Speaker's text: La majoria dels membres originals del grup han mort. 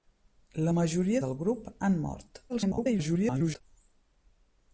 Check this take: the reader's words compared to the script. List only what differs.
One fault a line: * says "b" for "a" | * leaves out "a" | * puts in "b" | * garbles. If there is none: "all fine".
* leaves out "dels membres originals"
* garbles